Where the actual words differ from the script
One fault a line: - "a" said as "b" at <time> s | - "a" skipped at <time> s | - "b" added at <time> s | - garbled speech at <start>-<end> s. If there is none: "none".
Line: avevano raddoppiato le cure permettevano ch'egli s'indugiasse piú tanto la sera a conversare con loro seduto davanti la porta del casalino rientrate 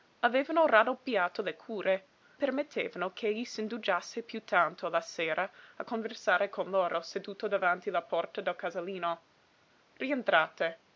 none